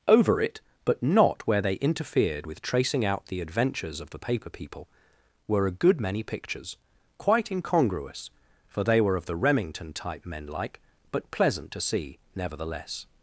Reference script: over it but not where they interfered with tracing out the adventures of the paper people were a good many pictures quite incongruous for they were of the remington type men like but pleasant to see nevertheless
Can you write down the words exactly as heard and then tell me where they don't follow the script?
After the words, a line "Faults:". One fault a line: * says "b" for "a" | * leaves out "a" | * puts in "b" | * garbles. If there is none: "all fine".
over it but not where they interfered with tracing out the adventures of the paper people were a good many pictures quite incongruous for they were of the remington type men like but pleasant to see nevertheless
Faults:
all fine